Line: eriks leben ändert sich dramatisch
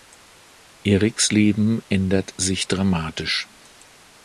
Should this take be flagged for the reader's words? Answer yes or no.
no